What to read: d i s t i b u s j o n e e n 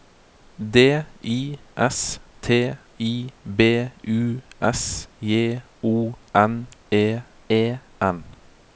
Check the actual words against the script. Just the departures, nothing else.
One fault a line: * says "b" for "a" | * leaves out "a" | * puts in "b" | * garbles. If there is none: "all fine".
all fine